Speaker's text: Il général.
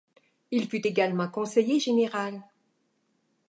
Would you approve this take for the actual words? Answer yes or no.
no